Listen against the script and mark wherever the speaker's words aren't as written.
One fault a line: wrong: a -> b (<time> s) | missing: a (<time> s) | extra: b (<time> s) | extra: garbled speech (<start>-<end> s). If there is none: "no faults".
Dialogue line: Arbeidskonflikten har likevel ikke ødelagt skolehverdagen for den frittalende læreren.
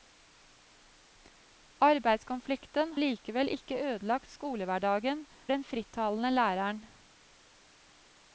missing: har (2.9 s)
missing: for (5.3 s)